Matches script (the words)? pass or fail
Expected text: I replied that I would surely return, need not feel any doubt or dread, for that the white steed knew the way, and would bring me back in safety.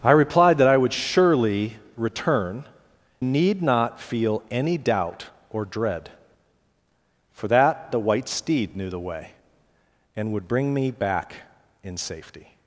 pass